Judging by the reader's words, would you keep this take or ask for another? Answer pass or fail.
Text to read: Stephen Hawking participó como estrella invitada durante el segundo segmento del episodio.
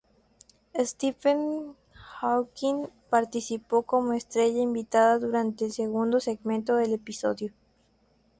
pass